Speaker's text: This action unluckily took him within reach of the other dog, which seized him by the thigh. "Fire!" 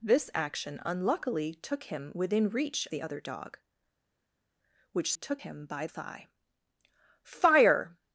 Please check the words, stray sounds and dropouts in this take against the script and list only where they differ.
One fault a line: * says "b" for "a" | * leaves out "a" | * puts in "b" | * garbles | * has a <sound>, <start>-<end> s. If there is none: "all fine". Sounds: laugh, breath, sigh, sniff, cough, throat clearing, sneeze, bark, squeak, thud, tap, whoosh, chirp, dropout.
* leaves out "of"
* says "took" for "seized"
* leaves out "the"